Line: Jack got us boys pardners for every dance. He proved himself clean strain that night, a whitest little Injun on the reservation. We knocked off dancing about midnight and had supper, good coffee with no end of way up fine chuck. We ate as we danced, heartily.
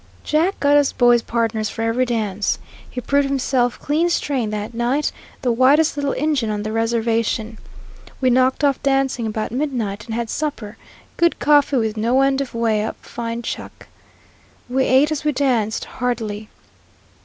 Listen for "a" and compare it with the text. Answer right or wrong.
wrong